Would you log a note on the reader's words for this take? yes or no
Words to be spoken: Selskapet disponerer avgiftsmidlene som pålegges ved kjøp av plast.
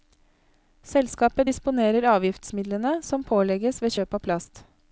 no